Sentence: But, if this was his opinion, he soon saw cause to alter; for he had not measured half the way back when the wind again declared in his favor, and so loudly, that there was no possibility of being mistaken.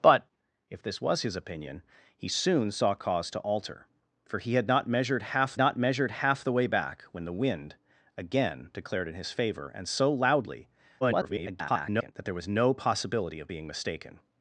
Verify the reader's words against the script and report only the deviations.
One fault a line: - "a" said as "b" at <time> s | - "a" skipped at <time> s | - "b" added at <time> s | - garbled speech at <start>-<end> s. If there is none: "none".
- "not measured half" added at 5.6 s
- garbled speech at 11.0-12.1 s